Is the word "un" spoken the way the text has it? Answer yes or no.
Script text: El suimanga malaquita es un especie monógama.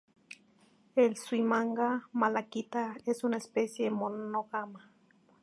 no